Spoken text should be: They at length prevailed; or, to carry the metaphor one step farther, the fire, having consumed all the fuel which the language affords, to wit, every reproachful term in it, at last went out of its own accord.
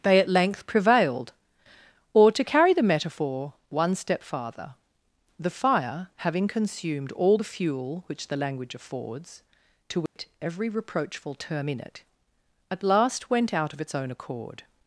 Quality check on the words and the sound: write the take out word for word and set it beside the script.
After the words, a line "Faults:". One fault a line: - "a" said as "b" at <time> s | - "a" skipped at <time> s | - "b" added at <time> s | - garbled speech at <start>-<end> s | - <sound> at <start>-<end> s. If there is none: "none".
They at length prevailed; or, to carry the metaphor one step farther, the fire, having consumed all the fuel which the language affords, to wit, every reproachful term in it, at last went out of its own accord.
Faults:
- dropout at 10.1-10.2 s